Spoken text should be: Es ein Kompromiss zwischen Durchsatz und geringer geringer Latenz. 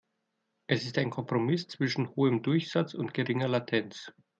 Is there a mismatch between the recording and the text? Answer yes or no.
yes